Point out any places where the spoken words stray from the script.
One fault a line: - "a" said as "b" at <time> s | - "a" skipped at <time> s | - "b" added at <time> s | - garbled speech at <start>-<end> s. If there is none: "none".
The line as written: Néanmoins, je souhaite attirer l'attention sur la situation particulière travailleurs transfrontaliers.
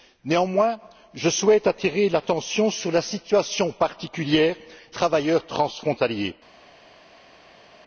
none